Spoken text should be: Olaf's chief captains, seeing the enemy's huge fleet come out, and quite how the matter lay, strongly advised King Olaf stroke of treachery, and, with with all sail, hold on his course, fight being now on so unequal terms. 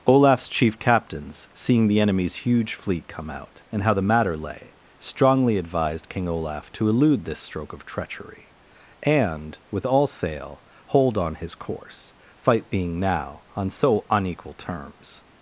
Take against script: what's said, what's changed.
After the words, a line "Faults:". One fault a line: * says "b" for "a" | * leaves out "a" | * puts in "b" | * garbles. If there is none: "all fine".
Olaf's chief captains, seeing the enemy's huge fleet come out, and how the matter lay, strongly advised King Olaf to elude this stroke of treachery, and, with all sail, hold on his course, fight being now on so unequal terms.
Faults:
* leaves out "quite"
* puts in "to elude this"
* leaves out "with"